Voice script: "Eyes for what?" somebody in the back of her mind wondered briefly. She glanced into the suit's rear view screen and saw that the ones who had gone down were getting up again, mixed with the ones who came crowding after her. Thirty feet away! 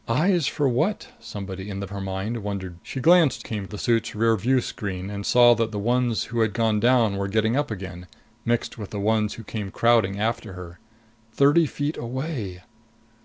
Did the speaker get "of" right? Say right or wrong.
wrong